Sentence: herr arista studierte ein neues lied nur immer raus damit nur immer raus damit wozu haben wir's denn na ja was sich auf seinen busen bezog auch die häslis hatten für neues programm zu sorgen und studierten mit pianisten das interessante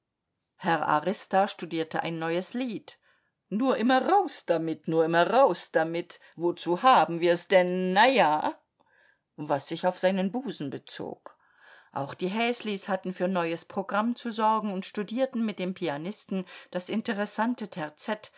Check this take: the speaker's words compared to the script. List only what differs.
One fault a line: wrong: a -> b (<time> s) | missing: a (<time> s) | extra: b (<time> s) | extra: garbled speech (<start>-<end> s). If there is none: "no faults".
extra: dem (15.6 s)